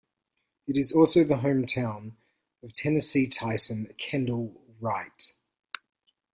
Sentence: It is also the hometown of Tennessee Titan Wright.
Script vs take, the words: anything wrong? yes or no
yes